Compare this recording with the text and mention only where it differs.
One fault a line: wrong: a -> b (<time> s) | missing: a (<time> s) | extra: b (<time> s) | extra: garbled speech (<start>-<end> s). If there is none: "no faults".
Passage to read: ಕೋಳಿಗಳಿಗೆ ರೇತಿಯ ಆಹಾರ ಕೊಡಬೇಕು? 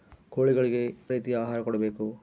no faults